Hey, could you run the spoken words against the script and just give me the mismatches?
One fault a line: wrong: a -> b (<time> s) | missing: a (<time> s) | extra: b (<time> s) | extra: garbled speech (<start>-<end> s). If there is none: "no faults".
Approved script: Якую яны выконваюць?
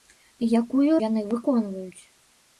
no faults